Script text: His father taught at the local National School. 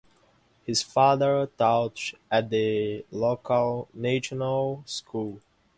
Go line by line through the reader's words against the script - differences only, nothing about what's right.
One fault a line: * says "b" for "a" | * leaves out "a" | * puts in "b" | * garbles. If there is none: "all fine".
all fine